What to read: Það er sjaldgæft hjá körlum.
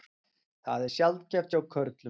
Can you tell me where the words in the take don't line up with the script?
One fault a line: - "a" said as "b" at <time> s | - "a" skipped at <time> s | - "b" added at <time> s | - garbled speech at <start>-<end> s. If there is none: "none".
none